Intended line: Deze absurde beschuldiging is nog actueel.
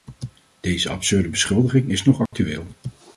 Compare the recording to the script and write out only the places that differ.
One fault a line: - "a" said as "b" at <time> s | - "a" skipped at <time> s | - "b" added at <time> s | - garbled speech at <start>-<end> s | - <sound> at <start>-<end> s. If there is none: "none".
- dropout at 2.3-2.3 s